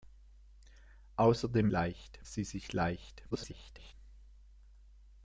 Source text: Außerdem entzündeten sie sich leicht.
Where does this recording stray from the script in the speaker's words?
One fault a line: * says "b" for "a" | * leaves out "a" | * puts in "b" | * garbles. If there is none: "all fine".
* says "leicht" for "entzündeten"
* garbles